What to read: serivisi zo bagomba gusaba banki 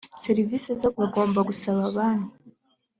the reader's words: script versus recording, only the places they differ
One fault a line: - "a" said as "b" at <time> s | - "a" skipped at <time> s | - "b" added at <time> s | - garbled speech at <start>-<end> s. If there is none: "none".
none